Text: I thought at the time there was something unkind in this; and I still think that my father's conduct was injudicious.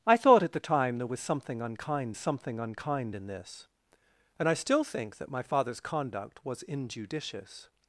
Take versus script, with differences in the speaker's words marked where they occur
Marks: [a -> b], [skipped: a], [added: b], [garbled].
I thought at the time there was something unkind [added: something unkind] in this; and I still think that my father's conduct was injudicious.